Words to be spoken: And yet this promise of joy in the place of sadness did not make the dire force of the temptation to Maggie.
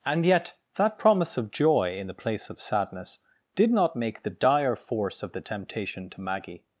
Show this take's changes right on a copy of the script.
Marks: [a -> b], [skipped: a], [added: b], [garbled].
And yet [this -> that] promise of joy in the place of sadness did not make the dire force of the temptation to Maggie.